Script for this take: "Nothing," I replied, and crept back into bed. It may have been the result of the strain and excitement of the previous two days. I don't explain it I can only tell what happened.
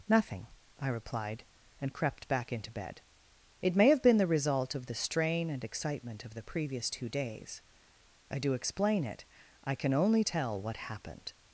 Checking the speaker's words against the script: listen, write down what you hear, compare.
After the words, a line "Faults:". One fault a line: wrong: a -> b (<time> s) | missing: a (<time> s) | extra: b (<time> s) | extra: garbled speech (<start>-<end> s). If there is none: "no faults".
"Nothing," I replied, and crept back into bed. It may have been the result of the strain and excitement of the previous two days. I do explain it I can only tell what happened.
Faults:
wrong: don't -> do (8.4 s)